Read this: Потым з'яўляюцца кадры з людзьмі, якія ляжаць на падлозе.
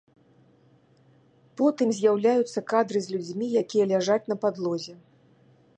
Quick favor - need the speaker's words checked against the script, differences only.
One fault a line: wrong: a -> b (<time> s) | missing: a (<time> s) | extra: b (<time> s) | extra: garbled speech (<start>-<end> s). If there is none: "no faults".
no faults